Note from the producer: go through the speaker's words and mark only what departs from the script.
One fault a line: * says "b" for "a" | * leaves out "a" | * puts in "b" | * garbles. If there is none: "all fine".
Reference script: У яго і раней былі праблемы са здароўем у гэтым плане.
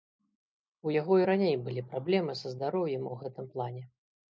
all fine